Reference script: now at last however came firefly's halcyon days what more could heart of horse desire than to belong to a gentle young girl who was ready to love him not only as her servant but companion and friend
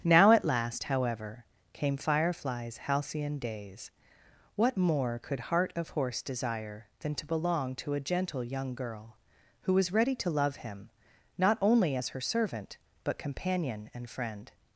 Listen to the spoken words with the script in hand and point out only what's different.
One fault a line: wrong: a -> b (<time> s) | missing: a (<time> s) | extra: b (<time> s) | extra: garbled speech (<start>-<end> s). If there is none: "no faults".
no faults